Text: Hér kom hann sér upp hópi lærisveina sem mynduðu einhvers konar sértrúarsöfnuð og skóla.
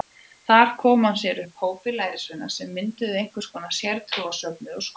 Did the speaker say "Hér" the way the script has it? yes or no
no